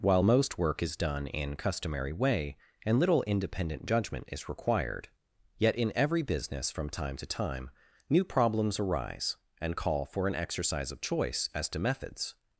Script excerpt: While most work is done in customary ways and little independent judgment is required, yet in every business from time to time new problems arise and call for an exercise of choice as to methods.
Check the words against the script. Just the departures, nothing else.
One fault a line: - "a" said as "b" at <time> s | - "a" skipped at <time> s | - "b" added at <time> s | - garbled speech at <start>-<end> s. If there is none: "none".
- "ways" said as "way" at 2.1 s